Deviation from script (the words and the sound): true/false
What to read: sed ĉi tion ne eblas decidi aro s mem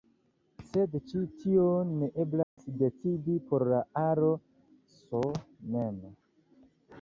true